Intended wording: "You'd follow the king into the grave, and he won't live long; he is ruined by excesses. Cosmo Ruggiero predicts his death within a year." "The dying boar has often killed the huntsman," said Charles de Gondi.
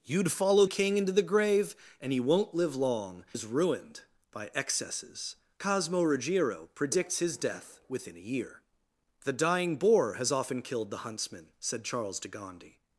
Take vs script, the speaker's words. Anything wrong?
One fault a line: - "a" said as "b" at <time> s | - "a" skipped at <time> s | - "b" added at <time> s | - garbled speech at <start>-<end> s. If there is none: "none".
- "the" skipped at 0.7 s
- "he" skipped at 3.2 s